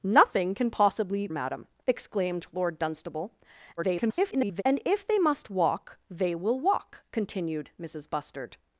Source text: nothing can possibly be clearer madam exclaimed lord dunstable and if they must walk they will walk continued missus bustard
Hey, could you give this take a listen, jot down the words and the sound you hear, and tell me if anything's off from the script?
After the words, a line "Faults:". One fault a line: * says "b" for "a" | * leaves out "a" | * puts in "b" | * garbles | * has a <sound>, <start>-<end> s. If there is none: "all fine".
nothing can possibly madam exclaimed lord dunstable [garbled] and if they must walk they will walk continued missus bustard
Faults:
* leaves out "be clearer"
* garbles